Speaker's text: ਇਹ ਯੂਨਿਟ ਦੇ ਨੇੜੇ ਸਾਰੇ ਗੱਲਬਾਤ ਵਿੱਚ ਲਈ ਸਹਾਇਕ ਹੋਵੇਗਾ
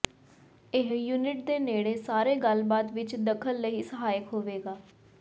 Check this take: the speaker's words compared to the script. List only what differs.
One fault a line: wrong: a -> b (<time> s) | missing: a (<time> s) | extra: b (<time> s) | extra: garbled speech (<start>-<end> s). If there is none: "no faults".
extra: ਦਖਲ (3.2 s)